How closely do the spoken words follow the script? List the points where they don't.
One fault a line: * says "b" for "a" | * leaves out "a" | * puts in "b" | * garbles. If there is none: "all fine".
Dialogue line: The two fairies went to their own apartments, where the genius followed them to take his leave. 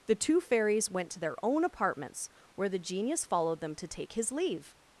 all fine